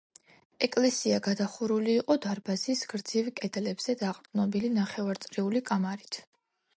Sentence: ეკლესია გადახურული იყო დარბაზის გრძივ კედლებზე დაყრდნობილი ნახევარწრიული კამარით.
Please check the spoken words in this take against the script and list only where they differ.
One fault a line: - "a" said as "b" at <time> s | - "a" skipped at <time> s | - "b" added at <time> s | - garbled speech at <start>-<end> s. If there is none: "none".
none